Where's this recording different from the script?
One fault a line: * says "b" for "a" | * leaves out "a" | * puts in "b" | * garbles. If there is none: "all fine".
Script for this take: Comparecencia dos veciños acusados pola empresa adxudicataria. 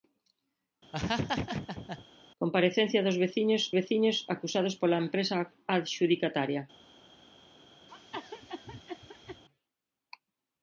* puts in "veciños"